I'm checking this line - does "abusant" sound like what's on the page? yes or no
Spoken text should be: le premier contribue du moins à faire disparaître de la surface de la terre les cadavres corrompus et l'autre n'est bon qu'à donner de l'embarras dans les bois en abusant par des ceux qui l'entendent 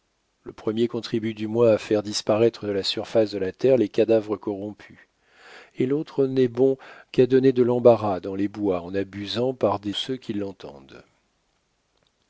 yes